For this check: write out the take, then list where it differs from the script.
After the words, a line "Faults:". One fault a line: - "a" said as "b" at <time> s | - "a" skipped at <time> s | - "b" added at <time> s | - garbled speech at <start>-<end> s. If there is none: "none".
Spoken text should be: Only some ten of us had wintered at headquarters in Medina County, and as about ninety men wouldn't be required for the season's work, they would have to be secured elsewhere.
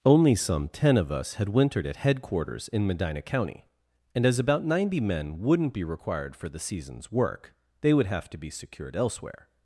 Only some ten of us had wintered at headquarters in Medina County, and as about ninety men wouldn't be required for the season's work, they would have to be secured elsewhere.
Faults:
none